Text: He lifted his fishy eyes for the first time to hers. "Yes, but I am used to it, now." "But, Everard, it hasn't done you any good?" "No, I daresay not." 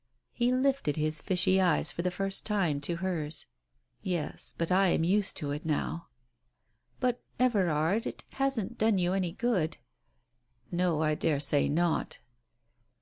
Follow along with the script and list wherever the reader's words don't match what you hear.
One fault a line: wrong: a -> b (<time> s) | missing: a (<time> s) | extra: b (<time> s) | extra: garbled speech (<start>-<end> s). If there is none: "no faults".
no faults